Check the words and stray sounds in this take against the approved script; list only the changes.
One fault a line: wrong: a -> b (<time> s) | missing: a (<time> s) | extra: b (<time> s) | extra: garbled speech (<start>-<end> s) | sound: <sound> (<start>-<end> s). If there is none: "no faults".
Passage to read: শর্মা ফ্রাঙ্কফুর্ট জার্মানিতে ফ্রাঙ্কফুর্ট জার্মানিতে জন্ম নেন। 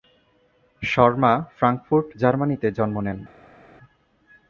missing: ফ্রাঙ্কফুর্ট জার্মানিতে (2.7 s)